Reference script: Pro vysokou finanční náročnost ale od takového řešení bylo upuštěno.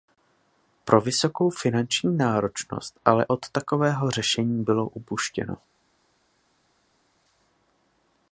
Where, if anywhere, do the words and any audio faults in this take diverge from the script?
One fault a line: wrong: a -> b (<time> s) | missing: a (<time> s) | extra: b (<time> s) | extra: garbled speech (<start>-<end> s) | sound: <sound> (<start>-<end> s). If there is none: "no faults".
no faults